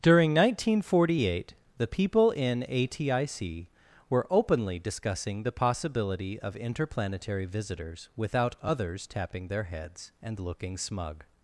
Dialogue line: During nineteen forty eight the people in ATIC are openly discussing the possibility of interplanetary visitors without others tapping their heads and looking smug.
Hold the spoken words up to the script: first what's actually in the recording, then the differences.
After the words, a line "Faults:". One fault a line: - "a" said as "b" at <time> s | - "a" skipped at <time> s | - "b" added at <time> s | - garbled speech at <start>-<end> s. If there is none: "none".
During nineteen forty eight the people in ATIC were openly discussing the possibility of interplanetary visitors without others tapping their heads and looking smug.
Faults:
- "are" said as "were" at 4.1 s